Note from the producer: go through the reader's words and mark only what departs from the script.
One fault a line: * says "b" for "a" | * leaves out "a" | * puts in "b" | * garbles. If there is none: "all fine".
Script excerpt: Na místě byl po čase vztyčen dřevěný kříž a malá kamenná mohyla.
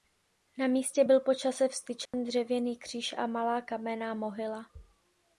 all fine